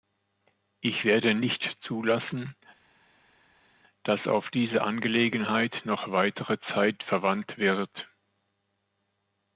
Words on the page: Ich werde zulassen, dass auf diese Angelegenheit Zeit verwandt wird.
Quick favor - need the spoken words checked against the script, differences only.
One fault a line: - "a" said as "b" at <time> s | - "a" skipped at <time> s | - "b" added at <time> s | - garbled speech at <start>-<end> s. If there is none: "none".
- "nicht" added at 1.3 s
- "noch weitere" added at 5.8 s